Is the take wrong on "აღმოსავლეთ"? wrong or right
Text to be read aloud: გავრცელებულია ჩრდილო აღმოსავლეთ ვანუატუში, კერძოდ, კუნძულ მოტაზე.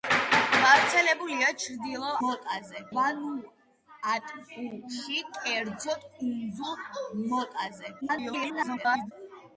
wrong